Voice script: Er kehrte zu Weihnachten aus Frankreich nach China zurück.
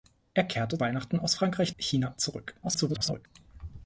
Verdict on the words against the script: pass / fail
fail